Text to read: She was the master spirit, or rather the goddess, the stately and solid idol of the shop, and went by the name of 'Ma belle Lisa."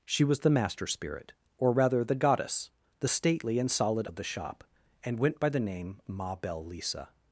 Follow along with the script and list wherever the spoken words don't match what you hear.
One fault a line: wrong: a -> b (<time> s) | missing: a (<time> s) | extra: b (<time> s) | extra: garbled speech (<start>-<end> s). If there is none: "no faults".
missing: idol (4.1 s)
missing: of (6.0 s)